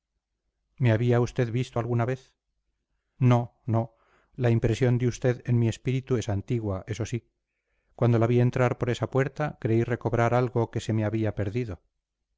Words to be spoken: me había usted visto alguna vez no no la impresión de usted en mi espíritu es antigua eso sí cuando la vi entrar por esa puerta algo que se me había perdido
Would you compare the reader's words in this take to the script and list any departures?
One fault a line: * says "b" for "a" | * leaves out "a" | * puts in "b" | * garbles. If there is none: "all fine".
* puts in "creí recobrar"